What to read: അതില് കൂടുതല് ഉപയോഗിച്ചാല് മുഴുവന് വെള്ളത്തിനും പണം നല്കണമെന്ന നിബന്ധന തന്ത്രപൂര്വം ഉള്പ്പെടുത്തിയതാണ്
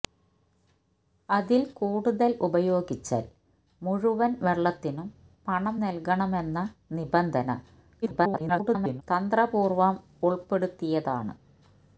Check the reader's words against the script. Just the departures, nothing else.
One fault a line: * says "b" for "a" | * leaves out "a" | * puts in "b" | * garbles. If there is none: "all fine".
* garbles